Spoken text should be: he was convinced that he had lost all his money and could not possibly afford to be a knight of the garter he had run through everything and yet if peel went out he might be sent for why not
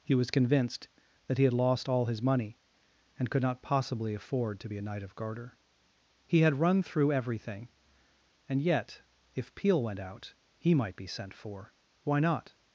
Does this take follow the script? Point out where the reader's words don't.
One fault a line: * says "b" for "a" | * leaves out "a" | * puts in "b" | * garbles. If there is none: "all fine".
* leaves out "the"